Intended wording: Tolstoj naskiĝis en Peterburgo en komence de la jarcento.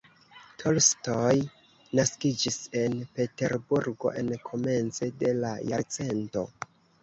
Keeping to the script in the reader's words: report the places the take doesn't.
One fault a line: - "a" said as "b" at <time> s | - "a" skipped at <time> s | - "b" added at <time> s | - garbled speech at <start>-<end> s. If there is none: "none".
none